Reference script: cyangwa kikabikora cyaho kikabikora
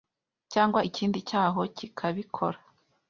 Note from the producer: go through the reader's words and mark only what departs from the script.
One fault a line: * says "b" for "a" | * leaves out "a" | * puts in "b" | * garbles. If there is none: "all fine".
* says "ikindi" for "kikabikora"